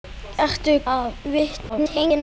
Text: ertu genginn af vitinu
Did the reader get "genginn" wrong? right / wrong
wrong